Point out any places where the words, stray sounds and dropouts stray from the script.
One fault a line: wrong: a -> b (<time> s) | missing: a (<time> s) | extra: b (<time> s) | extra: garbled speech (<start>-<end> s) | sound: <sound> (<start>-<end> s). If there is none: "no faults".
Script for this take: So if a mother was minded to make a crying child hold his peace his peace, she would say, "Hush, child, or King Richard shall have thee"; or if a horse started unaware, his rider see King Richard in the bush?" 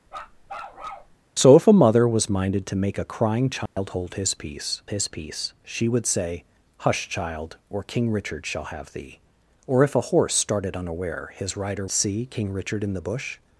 sound: bark (0.1-1.2 s)
sound: dropout (3.7-3.8 s)